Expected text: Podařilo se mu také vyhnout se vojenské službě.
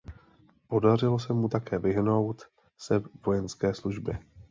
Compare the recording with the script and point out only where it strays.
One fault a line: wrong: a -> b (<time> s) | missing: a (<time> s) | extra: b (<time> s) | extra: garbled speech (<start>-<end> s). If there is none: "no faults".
no faults